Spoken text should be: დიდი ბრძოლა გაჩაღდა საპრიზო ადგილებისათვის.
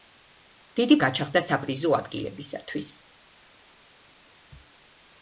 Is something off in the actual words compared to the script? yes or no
yes